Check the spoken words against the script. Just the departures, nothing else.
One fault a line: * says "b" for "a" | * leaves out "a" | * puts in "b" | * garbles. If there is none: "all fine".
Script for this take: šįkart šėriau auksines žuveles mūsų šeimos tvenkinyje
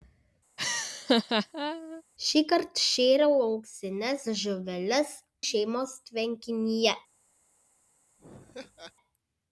* leaves out "mūsų"